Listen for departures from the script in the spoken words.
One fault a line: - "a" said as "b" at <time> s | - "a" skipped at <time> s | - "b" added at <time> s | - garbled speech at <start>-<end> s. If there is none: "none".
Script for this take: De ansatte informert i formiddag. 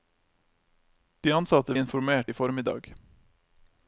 none